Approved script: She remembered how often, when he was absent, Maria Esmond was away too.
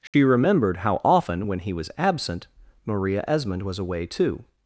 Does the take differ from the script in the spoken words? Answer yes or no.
no